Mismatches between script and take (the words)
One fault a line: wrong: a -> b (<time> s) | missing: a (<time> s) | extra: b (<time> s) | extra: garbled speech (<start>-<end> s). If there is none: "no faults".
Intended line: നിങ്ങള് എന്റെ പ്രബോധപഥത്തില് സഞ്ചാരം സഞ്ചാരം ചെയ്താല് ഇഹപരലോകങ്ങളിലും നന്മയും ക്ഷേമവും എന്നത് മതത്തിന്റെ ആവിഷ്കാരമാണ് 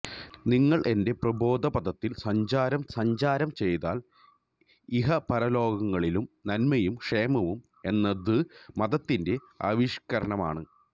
no faults